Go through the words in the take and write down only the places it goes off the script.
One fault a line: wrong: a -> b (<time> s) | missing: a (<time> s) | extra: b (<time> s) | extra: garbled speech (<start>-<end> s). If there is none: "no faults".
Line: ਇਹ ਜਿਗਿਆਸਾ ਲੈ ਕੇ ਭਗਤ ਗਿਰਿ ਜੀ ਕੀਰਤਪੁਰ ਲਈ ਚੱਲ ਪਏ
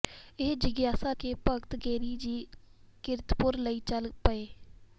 missing: ਲੈ (1.1 s)